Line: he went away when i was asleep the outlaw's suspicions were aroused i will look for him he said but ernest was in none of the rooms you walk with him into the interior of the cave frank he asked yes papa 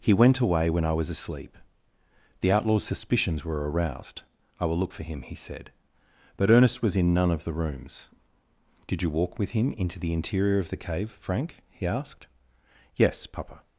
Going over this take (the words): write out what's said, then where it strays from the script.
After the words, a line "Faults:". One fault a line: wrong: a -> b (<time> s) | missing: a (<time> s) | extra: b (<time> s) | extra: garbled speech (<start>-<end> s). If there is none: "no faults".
he went away when i was asleep the outlaw's suspicions were aroused i will look for him he said but ernest was in none of the rooms did you walk with him into the interior of the cave frank he asked yes papa
Faults:
extra: did (8.9 s)